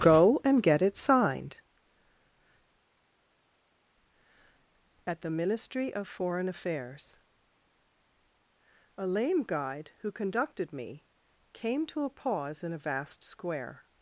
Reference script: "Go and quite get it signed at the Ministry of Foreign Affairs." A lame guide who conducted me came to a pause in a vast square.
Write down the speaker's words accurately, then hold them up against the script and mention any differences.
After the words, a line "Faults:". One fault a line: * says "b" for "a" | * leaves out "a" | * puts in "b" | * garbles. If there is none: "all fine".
"Go and get it signed at the Ministry of Foreign Affairs." A lame guide who conducted me came to a pause in a vast square.
Faults:
* leaves out "quite"